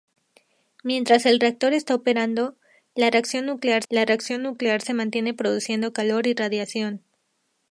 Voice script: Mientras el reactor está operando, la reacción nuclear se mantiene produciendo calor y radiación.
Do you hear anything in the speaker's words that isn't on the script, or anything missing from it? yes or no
yes